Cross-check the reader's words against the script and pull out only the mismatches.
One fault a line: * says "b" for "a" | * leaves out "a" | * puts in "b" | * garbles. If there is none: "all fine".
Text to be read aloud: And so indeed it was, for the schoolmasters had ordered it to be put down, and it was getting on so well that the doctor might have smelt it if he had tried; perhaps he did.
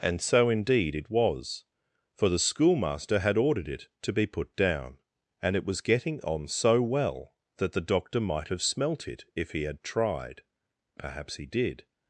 * says "schoolmaster" for "schoolmasters"